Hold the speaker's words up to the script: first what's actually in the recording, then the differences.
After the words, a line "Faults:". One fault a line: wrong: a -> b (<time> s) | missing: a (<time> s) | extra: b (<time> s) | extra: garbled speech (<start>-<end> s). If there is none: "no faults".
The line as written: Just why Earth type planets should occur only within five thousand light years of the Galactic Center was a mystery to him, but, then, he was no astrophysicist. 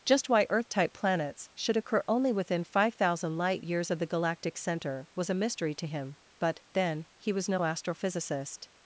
Just why Earth type planets should occur only within five thousand light years of the Galactic Center was a mystery to him, but, then, he was no astrophysicist.
Faults:
no faults